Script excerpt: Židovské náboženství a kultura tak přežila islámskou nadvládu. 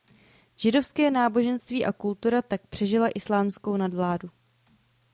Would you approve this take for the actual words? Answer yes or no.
yes